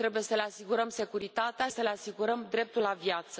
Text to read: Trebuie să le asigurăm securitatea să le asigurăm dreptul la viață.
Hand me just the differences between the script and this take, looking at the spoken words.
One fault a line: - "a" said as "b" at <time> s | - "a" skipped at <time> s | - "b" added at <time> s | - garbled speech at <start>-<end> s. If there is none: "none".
none